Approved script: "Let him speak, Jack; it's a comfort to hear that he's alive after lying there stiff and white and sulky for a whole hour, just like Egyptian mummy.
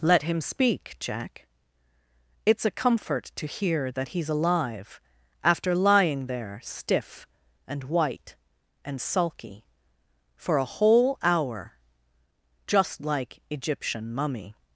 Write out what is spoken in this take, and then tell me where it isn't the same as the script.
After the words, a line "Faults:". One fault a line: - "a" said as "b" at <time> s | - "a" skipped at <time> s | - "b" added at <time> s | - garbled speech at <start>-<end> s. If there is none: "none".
"Let him speak, Jack; it's a comfort to hear that he's alive after lying there stiff and white and sulky for a whole hour, just like Egyptian mummy.
Faults:
none